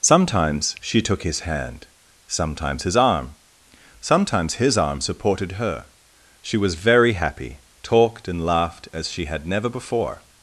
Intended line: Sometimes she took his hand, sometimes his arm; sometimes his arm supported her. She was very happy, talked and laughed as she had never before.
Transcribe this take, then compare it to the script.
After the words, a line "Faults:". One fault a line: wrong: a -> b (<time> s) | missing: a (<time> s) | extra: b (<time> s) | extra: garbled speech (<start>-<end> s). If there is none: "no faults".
Sometimes she took his hand, sometimes his arm; sometimes his arm supported her. She was very happy, talked and laughed as she had never before.
Faults:
no faults